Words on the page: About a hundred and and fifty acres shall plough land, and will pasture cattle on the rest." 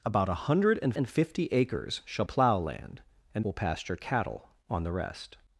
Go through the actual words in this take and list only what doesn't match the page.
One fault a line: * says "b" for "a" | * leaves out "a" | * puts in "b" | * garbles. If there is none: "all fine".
all fine